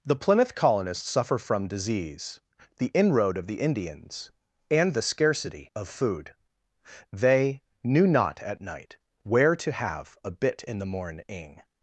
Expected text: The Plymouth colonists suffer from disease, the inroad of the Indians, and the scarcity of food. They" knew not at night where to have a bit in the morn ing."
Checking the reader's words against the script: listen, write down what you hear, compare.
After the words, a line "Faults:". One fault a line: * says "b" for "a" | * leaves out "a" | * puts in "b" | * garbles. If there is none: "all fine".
The Plymouth colonists suffer from disease, the inroad of the Indians, and the scarcity of food. They" knew not at night where to have a bit in the morn ing."
Faults:
all fine